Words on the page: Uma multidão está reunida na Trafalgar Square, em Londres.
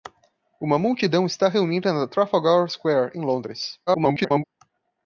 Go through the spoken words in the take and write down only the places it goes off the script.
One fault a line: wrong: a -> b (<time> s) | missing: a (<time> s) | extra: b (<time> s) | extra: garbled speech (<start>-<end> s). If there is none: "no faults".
extra: garbled speech (3.9-4.4 s)